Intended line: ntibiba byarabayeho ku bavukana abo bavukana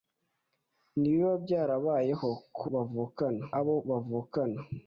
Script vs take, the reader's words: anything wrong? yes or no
no